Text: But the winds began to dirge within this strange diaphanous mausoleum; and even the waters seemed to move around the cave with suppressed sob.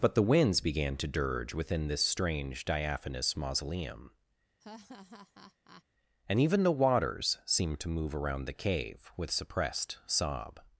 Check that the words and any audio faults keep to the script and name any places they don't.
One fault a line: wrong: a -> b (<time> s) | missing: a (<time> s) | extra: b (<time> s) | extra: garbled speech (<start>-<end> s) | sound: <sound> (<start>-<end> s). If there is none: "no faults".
sound: laugh (4.6-5.8 s)